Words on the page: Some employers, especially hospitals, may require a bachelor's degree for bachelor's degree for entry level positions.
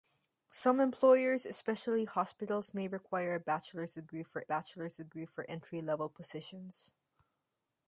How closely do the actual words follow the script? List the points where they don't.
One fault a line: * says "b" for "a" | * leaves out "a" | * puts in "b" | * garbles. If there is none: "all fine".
all fine